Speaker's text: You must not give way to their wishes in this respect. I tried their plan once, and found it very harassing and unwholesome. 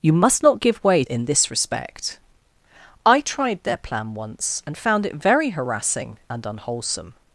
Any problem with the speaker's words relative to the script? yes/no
yes